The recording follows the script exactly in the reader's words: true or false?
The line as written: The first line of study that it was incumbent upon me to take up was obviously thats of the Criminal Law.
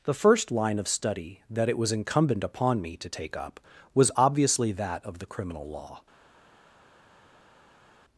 false